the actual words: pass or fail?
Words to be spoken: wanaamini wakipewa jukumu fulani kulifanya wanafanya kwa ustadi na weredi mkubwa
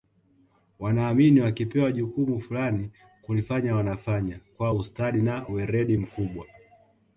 pass